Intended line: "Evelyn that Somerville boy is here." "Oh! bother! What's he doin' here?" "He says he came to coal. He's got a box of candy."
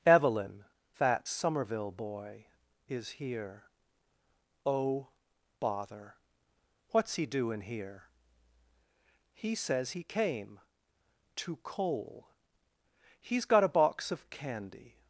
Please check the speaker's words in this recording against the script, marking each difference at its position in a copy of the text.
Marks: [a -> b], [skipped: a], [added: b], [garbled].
"Evelyn that Somerville boy is here." "Oh! bother! What's he doin' here?" "He says he came to coal. He's got a box of candy."